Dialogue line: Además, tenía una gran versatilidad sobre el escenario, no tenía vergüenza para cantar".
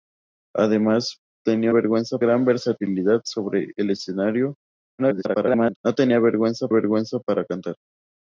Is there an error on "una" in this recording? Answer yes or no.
yes